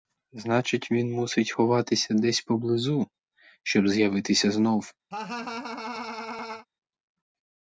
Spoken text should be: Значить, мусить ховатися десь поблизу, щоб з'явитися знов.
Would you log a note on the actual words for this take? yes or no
yes